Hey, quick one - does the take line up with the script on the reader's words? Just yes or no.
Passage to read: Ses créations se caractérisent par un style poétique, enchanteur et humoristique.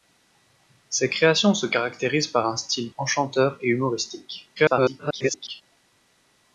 no